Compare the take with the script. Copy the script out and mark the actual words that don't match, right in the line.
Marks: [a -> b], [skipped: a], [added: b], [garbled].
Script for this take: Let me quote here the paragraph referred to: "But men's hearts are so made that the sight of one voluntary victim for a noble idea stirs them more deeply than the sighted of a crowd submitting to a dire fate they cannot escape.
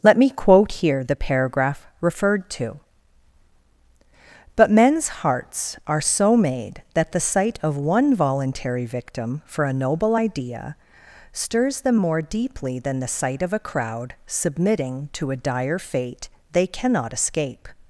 Let me quote here the paragraph referred to: "But men's hearts are so made that the sight of one voluntary victim for a noble idea stirs them more deeply than the [sighted -> sight] of a crowd submitting to a dire fate they cannot escape.